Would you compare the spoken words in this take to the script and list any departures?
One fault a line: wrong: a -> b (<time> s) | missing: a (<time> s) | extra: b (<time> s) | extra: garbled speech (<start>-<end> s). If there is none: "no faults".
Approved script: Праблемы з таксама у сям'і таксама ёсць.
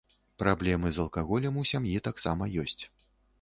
wrong: таксама -> алкаголем (1.0 s)